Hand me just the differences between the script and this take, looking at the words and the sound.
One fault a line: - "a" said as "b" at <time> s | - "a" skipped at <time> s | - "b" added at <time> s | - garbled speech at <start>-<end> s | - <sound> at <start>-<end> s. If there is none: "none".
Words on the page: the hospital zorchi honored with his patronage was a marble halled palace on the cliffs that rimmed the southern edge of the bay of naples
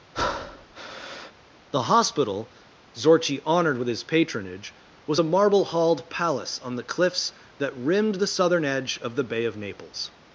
- breath at 0.1-1.3 s